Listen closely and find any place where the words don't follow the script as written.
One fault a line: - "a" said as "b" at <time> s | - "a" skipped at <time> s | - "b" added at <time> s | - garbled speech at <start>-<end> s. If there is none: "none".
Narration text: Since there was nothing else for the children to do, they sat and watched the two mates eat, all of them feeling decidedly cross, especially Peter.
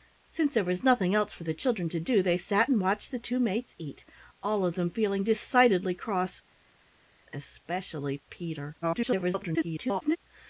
- garbled speech at 8.8-10.2 s